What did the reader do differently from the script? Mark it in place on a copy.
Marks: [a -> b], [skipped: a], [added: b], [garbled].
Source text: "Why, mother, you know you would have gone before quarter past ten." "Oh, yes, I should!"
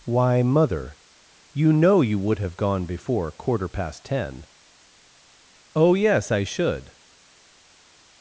"Why, mother, you know you would have gone before quarter past ten." "Oh, yes, I should!"